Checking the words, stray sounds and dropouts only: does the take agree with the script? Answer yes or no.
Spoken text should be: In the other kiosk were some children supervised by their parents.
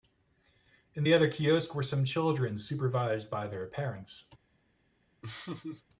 no